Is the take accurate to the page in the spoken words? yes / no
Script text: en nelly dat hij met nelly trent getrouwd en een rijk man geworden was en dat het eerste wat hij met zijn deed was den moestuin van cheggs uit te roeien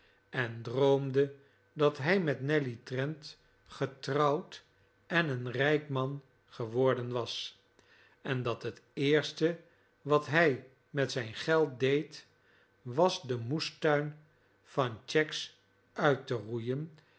no